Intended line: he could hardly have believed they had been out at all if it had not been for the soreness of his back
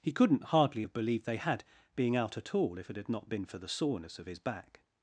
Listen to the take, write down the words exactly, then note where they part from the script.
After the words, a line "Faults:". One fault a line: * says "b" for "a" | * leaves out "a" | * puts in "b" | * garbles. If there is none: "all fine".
he couldn't hardly have believed they had being out at all if it had not been for the soreness of his back
Faults:
* says "couldn't" for "could"
* says "being" for "been"